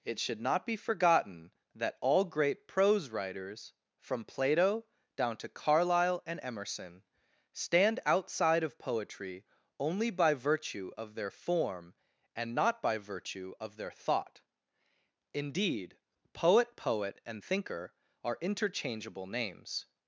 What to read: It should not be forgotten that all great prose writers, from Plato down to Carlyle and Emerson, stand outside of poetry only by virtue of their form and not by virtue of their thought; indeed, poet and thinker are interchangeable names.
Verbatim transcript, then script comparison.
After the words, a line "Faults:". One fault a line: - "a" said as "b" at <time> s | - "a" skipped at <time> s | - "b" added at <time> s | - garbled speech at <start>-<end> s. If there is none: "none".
It should not be forgotten that all great prose writers, from Plato down to Carlyle and Emerson, stand outside of poetry only by virtue of their form and not by virtue of their thought; indeed, poet poet and thinker are interchangeable names.
Faults:
- "poet" added at 16.8 s